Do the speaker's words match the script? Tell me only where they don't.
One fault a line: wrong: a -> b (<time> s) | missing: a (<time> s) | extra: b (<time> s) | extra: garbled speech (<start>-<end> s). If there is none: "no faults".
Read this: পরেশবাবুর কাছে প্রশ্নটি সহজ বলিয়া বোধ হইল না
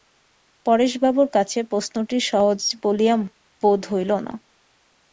no faults